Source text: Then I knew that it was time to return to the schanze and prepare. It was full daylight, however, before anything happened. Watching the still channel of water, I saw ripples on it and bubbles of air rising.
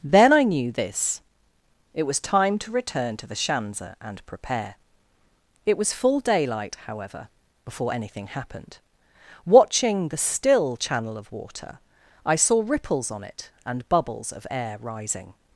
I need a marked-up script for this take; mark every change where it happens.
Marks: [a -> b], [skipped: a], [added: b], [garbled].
Then I knew [that -> this] it was time to return to the schanze and prepare. It was full daylight, however, before anything happened. Watching the still channel of water, I saw ripples on it and bubbles of air rising.